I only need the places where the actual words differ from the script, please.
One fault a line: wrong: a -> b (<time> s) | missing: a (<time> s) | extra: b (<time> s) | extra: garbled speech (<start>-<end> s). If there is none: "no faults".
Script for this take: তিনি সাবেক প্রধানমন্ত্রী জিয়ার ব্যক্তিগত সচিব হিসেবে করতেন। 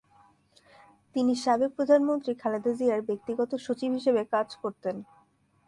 extra: খালেদা (2.4 s)
extra: কাজ (4.3 s)